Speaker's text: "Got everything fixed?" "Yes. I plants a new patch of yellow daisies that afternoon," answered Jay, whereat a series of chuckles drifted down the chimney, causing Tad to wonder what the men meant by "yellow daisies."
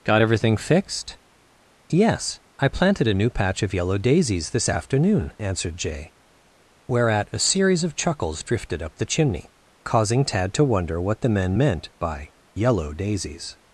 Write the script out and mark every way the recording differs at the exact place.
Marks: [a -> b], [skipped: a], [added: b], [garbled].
"Got everything fixed?" "Yes. I [plants -> planted] a new patch of yellow daisies [that -> this] afternoon," answered Jay, whereat a series of chuckles drifted [down -> up] the chimney, causing Tad to wonder what the men meant by "yellow daisies."